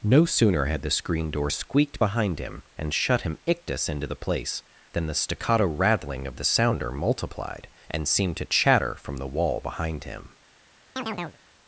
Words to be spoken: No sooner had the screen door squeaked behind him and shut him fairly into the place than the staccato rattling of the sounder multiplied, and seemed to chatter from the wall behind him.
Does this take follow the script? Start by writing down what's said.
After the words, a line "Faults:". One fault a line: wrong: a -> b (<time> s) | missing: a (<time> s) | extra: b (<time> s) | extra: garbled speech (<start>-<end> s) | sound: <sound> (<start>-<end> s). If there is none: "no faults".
No sooner had the screen door squeaked behind him and shut him ictus into the place than the staccato rattling of the sounder multiplied, and seemed to chatter from the wall behind him.
Faults:
wrong: fairly -> ictus (3.5 s)
sound: chirp (11.0-11.4 s)